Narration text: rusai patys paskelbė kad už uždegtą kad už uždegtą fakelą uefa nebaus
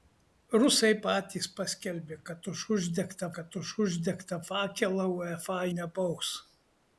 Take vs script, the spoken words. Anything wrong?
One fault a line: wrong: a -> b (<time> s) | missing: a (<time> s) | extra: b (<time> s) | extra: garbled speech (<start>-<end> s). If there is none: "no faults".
no faults